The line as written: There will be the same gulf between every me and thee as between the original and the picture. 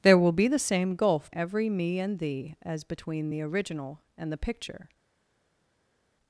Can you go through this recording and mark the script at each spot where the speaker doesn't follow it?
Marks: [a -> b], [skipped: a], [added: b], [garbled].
There will be the same gulf [skipped: between] every me and thee as between the original and the picture.